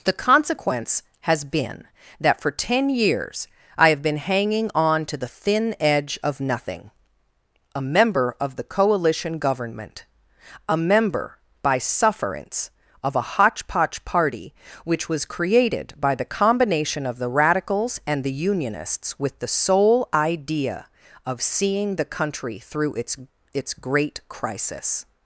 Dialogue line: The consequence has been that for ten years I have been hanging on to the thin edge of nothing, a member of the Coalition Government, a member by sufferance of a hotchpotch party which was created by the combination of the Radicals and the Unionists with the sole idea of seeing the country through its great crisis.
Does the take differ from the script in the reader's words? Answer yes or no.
yes